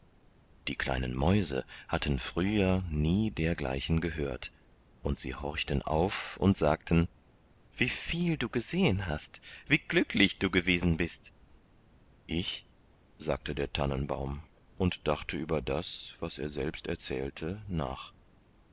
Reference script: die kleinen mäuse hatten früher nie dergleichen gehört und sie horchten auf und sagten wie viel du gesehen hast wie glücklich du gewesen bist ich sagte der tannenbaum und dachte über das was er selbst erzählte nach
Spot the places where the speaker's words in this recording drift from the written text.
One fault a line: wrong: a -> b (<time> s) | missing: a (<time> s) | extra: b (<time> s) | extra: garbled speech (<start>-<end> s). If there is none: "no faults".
no faults